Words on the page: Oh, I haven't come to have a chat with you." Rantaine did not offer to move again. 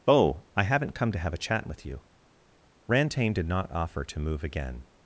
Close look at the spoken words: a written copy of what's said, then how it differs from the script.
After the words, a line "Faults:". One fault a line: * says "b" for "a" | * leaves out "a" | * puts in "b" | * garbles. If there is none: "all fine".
Oh, I haven't come to have a chat with you." Rantaine did not offer to move again.
Faults:
all fine